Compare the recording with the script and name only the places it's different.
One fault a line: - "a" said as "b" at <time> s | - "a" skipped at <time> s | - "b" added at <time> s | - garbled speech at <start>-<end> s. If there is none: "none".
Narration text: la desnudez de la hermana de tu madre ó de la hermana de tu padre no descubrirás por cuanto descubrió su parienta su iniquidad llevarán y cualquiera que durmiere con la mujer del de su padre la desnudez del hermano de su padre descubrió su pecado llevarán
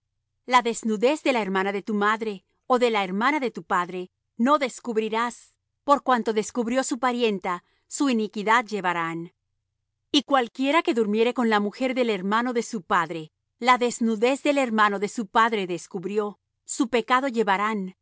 - "hermano" added at 12.1 s